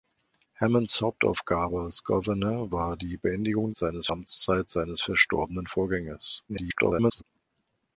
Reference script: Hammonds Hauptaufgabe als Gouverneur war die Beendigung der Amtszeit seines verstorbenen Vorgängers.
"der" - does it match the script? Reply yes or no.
no